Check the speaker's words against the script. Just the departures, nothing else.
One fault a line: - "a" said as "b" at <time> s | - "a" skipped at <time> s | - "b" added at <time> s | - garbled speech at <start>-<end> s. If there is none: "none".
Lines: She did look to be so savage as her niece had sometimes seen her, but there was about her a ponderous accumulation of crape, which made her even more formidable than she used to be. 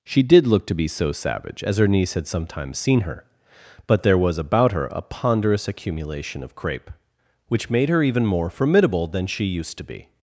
none